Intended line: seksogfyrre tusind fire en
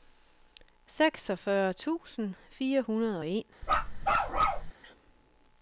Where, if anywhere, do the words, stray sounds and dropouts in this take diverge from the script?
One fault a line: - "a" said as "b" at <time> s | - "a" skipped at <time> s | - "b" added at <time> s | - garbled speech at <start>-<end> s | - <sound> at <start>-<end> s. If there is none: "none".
- "hundrede og" added at 2.8 s
- bark at 3.6-4.7 s